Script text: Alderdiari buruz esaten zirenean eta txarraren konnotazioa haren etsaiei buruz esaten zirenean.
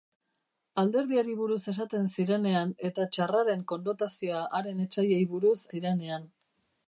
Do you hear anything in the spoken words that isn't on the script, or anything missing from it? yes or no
yes